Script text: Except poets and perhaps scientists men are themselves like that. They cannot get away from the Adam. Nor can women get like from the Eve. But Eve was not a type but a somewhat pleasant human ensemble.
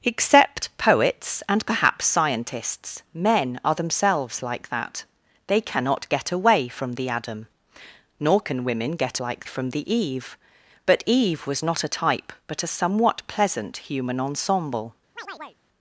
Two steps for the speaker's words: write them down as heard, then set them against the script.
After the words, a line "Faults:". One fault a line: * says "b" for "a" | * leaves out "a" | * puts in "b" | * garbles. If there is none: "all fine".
Except poets and perhaps scientists men are themselves like that. They cannot get away from the Adam. Nor can women get like from the Eve. But Eve was not a type but a somewhat pleasant human ensemble.
Faults:
all fine